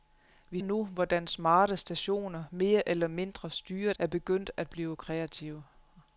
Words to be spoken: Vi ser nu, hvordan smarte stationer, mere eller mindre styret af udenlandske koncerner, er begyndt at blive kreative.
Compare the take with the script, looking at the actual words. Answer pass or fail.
fail